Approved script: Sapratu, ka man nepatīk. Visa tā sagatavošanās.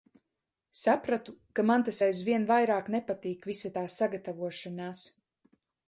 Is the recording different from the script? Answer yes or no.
yes